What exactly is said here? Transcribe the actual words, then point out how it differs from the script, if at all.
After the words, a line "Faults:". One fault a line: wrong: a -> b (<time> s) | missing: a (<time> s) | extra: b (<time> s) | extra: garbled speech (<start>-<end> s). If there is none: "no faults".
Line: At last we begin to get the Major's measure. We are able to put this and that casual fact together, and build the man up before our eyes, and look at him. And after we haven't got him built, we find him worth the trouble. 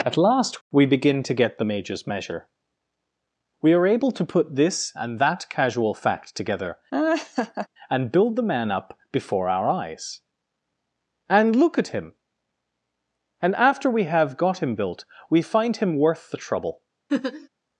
At last we begin to get the Major's measure. We are able to put this and that casual fact together, and build the man up before our eyes, and look at him. And after we have got him built, we find him worth the trouble.
Faults:
wrong: haven't -> have (14.0 s)